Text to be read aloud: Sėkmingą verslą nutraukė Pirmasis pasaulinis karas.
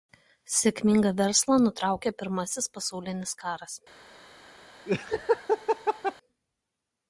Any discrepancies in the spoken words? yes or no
no